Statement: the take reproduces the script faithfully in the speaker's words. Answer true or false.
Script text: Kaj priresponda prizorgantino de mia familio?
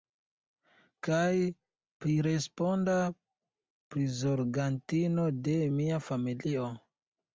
true